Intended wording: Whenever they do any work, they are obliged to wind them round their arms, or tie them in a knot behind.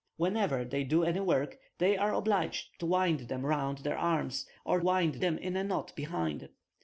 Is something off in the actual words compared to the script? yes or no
yes